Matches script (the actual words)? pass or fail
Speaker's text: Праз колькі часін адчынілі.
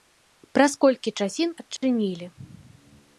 pass